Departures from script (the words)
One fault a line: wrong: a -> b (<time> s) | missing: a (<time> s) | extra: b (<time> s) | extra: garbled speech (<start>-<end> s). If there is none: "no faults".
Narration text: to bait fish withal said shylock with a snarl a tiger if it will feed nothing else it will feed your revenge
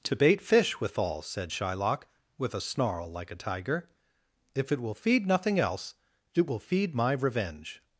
extra: like (3.1 s)
wrong: your -> my (6.9 s)